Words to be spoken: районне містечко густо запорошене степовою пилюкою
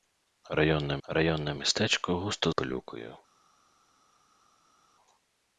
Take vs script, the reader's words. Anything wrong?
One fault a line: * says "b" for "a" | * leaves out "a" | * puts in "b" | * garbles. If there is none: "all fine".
* puts in "районне"
* leaves out "запорошене степовою"